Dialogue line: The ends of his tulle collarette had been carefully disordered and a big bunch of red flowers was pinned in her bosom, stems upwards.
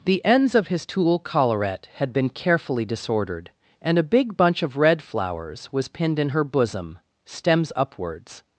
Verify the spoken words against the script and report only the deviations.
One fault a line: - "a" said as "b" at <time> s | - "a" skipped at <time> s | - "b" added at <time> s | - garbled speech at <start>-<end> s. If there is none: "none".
none